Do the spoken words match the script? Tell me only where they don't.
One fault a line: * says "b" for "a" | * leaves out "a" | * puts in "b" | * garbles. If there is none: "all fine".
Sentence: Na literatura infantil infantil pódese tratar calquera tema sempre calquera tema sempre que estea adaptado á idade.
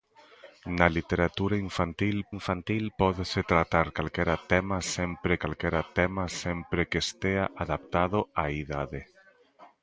all fine